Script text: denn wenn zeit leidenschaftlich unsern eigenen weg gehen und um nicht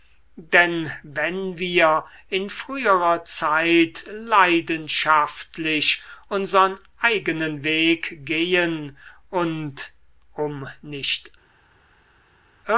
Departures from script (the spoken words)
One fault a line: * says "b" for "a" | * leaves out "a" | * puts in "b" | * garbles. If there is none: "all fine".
* puts in "wir in früherer"